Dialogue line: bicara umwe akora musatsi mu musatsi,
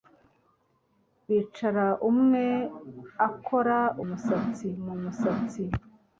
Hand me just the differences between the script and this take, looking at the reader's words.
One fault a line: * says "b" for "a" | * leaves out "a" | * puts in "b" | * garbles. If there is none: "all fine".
all fine